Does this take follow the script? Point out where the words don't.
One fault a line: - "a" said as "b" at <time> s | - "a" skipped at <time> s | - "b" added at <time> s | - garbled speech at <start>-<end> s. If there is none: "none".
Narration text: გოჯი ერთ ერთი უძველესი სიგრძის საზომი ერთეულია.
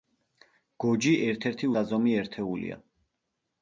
- "უძველესი სიგრძის" skipped at 1.7 s